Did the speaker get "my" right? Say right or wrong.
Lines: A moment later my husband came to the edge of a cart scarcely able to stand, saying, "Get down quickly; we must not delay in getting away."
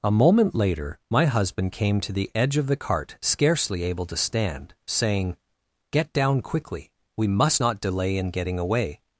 right